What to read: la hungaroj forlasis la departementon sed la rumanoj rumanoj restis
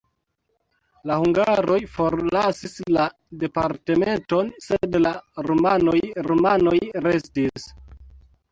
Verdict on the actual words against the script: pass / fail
pass